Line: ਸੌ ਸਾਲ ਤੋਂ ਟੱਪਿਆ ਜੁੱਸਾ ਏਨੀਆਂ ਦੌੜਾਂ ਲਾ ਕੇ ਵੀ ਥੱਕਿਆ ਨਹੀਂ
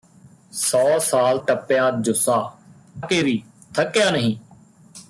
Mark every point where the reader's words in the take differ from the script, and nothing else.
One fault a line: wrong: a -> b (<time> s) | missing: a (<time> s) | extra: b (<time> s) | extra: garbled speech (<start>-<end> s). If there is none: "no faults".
missing: ਤੋਂ (1.4 s)
missing: ਏਨੀਆਂ ਦੌੜਾਂ ਲਾ (2.5 s)